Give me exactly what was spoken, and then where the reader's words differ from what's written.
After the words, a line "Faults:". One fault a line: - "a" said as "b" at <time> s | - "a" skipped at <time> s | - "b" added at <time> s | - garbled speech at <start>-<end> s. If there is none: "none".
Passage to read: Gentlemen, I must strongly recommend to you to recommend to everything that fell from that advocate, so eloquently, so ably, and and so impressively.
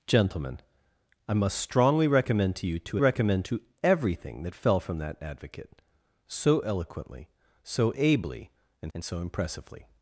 Gentlemen, I must strongly recommend to you to recommend to everything that fell from that advocate, so eloquently, so ably, and and so impressively.
Faults:
none